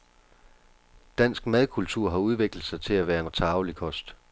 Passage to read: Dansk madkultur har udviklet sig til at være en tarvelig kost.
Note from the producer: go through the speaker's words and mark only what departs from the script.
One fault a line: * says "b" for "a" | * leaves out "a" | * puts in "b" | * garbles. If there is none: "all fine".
all fine